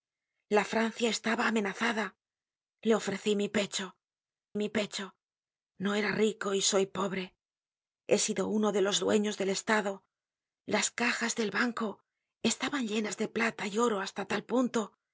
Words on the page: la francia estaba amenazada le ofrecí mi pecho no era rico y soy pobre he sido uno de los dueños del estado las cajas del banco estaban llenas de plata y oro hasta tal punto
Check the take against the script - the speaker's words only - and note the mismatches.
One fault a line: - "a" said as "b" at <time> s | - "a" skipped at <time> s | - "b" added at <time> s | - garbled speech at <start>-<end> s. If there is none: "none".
- "mi pecho" added at 4.6 s